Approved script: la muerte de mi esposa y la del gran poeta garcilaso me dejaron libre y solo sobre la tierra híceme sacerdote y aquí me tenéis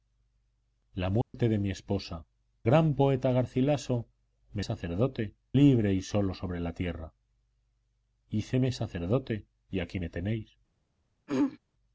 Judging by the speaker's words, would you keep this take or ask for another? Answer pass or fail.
fail